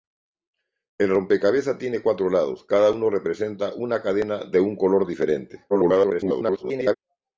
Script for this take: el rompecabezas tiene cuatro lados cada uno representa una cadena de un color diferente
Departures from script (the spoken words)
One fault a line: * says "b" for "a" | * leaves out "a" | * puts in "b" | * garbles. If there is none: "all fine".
* garbles